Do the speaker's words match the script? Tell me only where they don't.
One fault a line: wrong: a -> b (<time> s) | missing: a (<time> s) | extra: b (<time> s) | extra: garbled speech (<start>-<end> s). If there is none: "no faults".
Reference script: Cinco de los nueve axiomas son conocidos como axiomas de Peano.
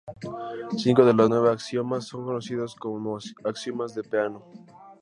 no faults